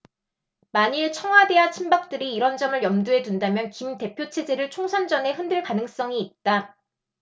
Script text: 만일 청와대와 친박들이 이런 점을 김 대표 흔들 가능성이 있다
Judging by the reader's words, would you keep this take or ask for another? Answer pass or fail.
fail